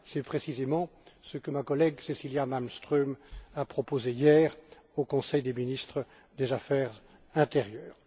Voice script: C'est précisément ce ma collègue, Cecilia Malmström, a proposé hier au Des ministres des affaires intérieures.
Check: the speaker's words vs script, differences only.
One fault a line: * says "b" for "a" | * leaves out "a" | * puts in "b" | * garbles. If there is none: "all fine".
* puts in "que"
* puts in "Conseil"